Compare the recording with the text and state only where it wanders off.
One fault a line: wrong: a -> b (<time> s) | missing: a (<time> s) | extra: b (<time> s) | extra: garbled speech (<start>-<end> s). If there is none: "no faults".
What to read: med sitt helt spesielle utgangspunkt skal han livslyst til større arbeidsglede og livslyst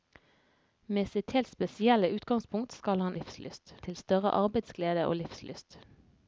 no faults